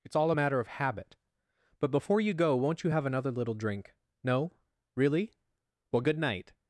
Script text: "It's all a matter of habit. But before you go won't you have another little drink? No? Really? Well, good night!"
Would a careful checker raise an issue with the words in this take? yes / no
no